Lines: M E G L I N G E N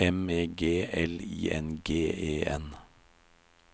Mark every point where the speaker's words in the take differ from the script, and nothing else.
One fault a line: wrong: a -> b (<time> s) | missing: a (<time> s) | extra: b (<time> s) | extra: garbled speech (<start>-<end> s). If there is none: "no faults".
no faults